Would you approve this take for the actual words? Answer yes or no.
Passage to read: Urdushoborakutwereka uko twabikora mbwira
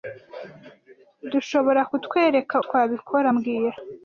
no